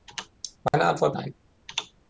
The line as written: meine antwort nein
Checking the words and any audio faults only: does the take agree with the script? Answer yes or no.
no